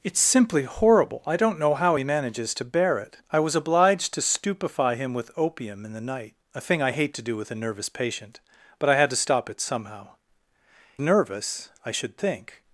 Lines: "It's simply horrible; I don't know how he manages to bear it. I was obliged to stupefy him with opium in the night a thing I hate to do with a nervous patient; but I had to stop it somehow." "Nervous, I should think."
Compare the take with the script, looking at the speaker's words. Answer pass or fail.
pass